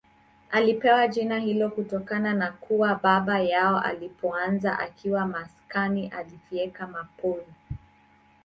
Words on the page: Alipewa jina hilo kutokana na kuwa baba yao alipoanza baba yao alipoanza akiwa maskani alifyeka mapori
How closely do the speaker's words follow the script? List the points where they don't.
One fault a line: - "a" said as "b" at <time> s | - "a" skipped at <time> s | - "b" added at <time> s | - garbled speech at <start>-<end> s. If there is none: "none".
- "baba yao alipoanza" skipped at 4.8 s